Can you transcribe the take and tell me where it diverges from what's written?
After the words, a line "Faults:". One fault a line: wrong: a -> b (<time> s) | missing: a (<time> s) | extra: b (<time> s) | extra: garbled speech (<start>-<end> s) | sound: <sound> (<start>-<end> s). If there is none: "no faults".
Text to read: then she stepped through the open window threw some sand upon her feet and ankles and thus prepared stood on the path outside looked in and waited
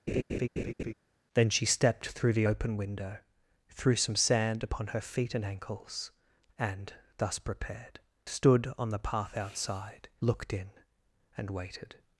then she stepped through the open window threw some sand upon her feet and ankles and thus prepared stood on the path outside looked in and waited
Faults:
sound: laugh (0.1-0.9 s)